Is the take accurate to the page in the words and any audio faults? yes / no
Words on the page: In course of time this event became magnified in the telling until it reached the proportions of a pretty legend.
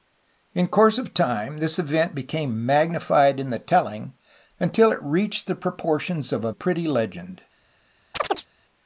no